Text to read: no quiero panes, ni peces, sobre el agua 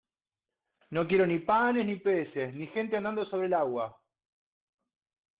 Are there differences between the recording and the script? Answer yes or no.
yes